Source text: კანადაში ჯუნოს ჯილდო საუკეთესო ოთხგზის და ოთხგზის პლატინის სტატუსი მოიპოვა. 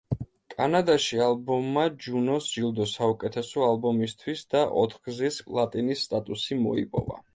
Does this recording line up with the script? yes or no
no